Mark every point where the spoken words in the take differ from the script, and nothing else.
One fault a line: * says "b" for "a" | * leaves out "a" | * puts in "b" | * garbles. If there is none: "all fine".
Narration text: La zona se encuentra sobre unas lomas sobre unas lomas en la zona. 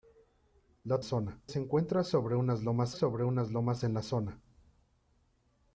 all fine